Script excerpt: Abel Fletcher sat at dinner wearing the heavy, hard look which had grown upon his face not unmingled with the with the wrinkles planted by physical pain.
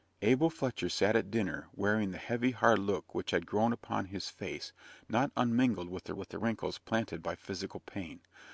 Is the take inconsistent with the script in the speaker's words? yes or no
no